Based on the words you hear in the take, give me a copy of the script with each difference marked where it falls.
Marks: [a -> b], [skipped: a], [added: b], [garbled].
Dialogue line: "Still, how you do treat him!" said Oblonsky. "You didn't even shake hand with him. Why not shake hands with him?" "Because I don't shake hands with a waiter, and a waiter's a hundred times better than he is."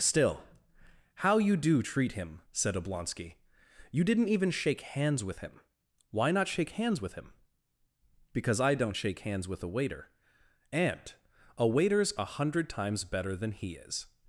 "Still, how you do treat him!" said Oblonsky. "You didn't even shake [hand -> hands] with him. Why not shake hands with him?" "Because I don't shake hands with a waiter, and a waiter's a hundred times better than he is."